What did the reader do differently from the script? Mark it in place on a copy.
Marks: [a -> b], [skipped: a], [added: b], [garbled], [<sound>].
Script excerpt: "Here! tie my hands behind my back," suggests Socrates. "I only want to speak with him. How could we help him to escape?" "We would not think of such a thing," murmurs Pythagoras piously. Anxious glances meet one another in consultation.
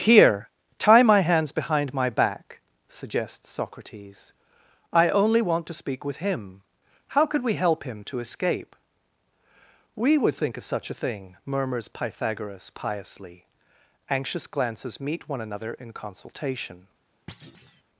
"Here! tie my hands behind my back," suggests Socrates. "I only want to speak with him. How could we help him to escape?" "We would [skipped: not] think of such a thing," murmurs Pythagoras piously. Anxious glances meet one another in consultation. [thud]